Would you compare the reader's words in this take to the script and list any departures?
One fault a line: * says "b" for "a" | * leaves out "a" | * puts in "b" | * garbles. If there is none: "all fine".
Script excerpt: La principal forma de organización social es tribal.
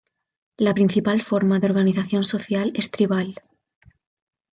all fine